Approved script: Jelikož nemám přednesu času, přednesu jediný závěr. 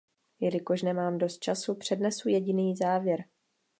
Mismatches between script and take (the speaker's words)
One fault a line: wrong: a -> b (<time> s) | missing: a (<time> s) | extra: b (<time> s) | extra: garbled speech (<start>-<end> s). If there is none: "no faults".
wrong: přednesu -> dost (1.2 s)